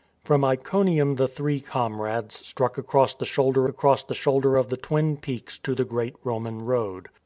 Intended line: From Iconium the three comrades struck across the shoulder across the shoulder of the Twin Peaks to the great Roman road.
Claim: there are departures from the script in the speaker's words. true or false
false